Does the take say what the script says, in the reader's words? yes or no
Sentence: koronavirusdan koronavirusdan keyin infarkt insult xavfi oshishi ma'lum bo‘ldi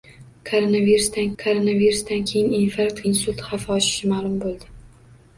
yes